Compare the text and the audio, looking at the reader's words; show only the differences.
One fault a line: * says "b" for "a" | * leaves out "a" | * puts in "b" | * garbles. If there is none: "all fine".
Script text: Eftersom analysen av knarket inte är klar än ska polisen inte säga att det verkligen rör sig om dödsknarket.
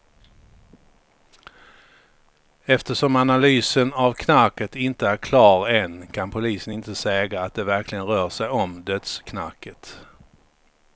* says "kan" for "ska"